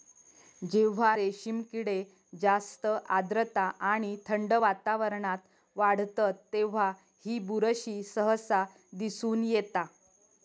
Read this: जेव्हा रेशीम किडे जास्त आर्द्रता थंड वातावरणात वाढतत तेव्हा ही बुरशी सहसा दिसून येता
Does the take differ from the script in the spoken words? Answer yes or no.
yes